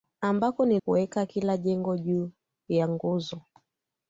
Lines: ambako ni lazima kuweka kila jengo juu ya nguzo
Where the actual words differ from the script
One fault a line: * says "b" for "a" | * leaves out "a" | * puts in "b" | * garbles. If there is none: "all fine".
* leaves out "lazima"